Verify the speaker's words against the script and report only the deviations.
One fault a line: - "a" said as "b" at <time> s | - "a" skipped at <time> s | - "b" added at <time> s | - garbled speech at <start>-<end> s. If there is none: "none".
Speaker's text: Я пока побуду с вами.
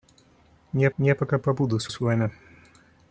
- "я" added at 1.0 s
- "с" added at 1.9 s